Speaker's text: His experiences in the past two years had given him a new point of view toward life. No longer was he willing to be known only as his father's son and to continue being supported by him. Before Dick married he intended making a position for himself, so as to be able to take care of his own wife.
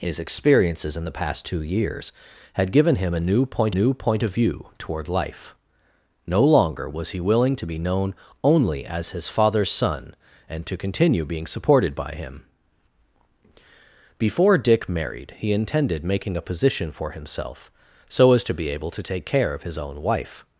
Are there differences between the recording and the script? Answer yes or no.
yes